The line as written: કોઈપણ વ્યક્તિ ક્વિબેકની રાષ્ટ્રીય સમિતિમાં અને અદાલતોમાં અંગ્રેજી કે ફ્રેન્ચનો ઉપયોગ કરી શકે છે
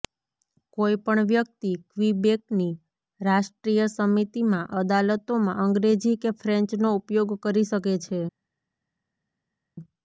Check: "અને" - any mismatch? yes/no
yes